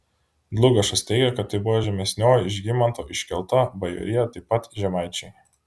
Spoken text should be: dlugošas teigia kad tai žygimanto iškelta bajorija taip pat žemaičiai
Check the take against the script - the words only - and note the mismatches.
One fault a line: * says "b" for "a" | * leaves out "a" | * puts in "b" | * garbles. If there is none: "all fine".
* puts in "buvo žemesnioji"